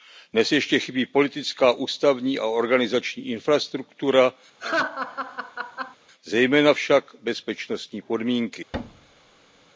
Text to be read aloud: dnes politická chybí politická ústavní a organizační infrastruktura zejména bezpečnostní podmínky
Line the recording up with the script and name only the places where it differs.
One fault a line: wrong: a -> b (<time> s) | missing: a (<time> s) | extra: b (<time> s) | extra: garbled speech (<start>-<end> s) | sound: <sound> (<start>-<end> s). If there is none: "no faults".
wrong: politická -> ještě (0.5 s)
sound: laugh (4.6-6.0 s)
extra: však (6.7 s)
sound: thud (8.7-9.7 s)